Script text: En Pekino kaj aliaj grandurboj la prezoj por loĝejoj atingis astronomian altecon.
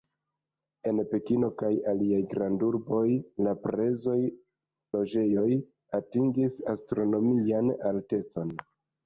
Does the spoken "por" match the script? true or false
false